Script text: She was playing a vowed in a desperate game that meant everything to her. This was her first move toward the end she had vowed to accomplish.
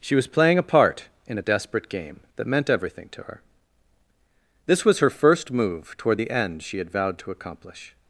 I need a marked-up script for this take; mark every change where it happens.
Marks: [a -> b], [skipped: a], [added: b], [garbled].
She was playing a [vowed -> part] in a desperate game that meant everything to her. This was her first move toward the end she had vowed to accomplish.